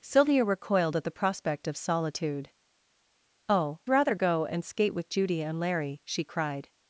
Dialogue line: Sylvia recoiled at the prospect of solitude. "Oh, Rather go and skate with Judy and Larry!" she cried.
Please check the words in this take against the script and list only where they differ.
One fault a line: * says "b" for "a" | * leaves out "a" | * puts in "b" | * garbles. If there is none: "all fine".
all fine